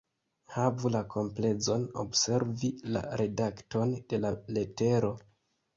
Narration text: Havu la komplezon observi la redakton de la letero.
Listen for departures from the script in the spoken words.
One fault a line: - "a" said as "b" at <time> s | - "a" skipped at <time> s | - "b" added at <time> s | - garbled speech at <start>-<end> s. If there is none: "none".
none